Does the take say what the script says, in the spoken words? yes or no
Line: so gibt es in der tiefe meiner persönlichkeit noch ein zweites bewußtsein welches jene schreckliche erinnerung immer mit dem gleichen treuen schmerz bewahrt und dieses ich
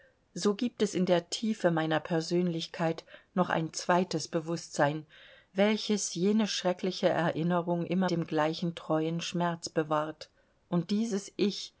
no